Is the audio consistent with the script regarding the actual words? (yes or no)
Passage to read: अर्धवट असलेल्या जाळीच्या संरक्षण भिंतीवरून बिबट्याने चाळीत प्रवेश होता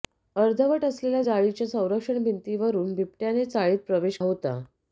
yes